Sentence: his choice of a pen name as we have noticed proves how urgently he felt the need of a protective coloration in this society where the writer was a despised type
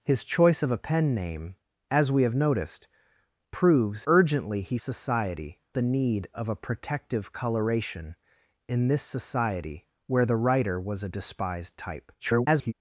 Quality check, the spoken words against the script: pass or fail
fail